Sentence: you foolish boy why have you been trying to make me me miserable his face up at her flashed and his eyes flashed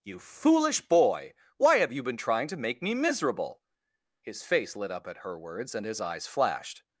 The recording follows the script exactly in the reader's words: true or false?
false